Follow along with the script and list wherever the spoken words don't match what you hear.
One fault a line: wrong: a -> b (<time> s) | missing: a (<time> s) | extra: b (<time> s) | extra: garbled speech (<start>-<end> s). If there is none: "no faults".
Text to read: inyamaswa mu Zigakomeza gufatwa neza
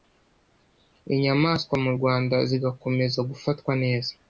extra: Rwanda (1.9 s)